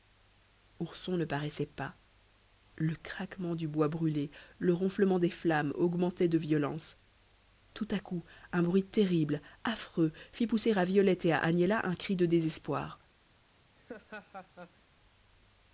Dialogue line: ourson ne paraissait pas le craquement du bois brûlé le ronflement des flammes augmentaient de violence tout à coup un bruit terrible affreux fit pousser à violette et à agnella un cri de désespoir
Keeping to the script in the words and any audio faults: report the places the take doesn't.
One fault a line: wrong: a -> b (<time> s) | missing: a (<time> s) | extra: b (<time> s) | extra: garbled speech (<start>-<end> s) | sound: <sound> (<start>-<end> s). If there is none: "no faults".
sound: laugh (13.8-14.8 s)